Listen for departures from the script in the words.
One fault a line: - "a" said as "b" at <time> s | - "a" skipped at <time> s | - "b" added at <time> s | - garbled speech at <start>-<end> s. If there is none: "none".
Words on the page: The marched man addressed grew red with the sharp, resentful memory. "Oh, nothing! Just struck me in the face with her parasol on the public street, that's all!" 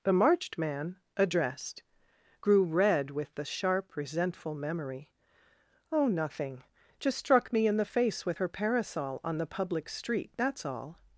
none